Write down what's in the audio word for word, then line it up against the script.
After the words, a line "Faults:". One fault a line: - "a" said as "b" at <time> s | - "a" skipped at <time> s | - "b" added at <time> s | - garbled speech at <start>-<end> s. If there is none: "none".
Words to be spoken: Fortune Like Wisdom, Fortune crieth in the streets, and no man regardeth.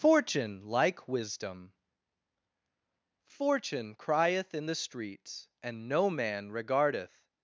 Fortune Like Wisdom, Fortune crieth in the streets, and no man regardeth.
Faults:
none